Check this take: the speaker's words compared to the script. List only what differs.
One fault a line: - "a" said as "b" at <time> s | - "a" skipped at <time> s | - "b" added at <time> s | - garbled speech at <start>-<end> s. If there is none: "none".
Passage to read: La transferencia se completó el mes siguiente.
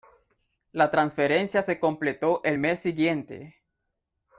none